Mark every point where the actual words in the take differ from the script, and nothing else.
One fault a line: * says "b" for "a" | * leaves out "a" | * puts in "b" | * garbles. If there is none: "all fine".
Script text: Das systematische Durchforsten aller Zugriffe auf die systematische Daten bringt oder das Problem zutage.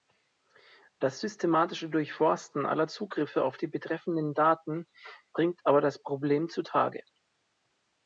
* says "betreffenden" for "systematische"
* says "aber" for "oder"